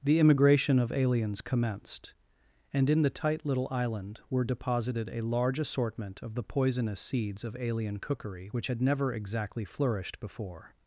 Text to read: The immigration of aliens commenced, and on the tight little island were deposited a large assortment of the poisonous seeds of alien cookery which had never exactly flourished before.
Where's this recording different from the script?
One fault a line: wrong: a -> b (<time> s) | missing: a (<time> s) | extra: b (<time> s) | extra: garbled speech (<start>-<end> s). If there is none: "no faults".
wrong: on -> in (2.9 s)